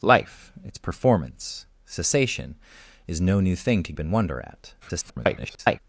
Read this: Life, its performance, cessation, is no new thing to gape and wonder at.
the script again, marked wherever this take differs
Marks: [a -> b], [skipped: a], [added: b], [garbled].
Life, its performance, cessation, is no new thing to [skipped: gape] and wonder at. [garbled]